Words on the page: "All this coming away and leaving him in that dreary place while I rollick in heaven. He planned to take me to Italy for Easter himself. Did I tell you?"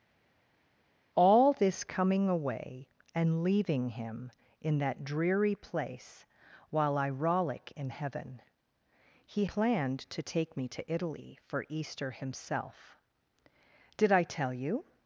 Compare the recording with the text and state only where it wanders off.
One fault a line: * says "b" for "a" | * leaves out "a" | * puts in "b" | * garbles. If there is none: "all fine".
all fine